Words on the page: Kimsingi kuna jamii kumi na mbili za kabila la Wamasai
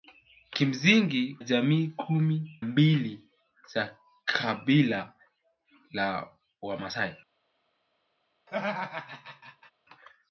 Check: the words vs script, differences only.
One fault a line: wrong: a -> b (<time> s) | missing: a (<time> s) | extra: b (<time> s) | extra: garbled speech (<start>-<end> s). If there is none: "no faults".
missing: kuna (1.4 s)
missing: na (2.6 s)